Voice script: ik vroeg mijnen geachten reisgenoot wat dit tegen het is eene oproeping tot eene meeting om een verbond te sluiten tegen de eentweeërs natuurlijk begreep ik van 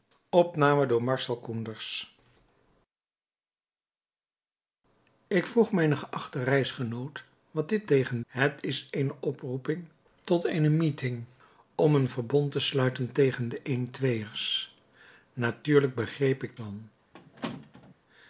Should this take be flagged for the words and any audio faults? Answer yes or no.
yes